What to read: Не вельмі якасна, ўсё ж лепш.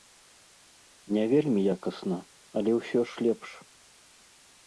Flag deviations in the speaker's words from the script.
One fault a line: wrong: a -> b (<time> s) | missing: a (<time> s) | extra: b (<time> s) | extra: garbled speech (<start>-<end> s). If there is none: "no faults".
extra: але (2.6 s)